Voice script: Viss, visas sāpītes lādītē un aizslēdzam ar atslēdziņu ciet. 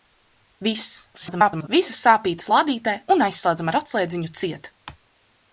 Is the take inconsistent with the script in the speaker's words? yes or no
yes